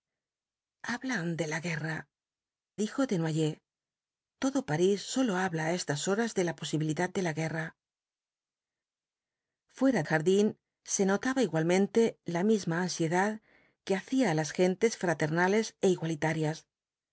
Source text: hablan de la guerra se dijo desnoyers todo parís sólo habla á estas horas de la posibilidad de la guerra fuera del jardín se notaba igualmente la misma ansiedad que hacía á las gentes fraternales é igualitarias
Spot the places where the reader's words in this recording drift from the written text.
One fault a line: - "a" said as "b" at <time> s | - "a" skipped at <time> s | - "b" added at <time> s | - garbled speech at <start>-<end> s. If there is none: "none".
- "se" skipped at 2.1 s
- "del" skipped at 10.0 s